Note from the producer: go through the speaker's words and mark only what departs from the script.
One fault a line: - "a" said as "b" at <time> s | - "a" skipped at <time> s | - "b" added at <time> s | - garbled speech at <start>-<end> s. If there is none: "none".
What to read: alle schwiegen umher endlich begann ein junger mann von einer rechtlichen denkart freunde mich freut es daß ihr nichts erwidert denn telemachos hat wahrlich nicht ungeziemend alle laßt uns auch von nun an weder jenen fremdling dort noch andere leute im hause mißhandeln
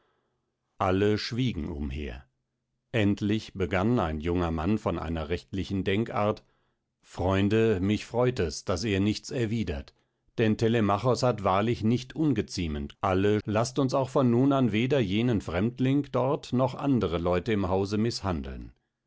none